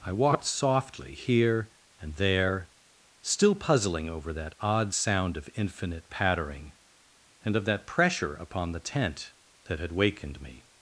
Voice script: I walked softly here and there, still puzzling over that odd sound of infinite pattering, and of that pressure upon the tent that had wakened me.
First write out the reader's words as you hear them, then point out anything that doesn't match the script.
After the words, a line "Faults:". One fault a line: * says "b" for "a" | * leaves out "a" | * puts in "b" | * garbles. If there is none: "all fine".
I walked softly here and there, still puzzling over that odd sound of infinite pattering, and of that pressure upon the tent that had wakened me.
Faults:
all fine